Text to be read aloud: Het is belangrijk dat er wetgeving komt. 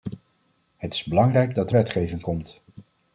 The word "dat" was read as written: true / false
true